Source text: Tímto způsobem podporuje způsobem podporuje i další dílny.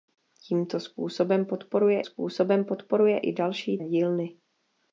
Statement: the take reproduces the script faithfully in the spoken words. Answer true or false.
true